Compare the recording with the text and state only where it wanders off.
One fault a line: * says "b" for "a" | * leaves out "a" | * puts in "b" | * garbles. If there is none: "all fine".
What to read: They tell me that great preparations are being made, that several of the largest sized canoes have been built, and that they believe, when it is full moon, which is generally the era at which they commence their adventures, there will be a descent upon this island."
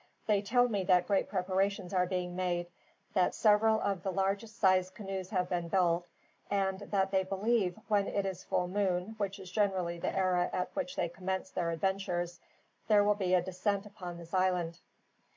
all fine